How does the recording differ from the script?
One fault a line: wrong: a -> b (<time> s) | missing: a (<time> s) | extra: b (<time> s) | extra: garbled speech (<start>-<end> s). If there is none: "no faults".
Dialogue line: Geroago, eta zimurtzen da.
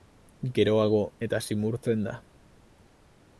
no faults